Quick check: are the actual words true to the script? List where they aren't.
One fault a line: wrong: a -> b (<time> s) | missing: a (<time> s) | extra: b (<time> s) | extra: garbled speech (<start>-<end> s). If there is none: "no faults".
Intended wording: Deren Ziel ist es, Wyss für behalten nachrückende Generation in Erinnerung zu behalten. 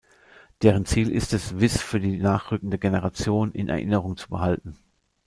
wrong: behalten -> die (2.0 s)